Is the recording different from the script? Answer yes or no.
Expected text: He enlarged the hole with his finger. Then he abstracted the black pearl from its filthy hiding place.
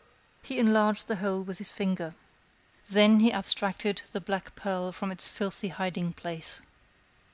no